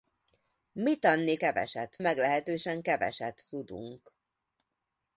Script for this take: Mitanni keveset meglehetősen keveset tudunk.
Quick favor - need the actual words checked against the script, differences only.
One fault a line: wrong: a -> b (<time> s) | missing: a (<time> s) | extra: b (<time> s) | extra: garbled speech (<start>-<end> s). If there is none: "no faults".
no faults